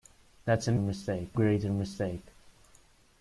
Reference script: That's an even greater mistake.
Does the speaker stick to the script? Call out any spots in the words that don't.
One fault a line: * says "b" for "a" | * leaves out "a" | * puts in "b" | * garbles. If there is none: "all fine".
* says "mistake" for "even"